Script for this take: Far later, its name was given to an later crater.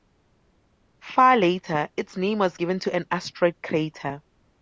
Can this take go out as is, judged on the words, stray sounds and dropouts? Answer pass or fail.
fail